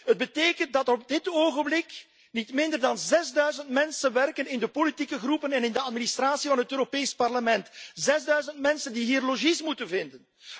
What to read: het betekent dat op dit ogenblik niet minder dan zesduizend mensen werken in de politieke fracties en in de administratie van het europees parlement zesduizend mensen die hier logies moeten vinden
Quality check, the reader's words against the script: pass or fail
pass